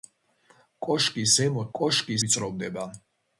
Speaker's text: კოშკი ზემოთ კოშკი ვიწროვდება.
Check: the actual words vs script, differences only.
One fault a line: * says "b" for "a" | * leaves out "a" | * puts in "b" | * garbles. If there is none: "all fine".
all fine